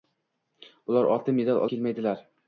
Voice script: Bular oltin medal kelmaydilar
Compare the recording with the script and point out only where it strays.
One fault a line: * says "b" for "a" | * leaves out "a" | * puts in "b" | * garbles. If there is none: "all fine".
all fine